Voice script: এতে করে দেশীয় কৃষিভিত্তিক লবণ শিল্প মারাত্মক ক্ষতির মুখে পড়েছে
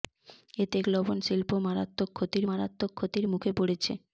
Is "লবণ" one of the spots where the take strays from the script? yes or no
yes